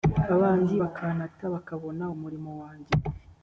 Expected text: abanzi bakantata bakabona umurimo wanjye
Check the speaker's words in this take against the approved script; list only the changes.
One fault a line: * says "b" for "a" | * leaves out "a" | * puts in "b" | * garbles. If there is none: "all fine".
all fine